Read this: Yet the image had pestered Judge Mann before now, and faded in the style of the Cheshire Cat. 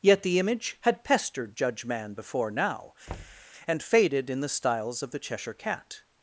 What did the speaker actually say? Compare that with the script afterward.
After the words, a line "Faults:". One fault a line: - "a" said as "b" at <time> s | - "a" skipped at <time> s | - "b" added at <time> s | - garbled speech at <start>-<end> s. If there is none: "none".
Yet the image had pestered Judge Mann before now, and faded in the styles of the Cheshire Cat.
Faults:
- "style" said as "styles" at 4.5 s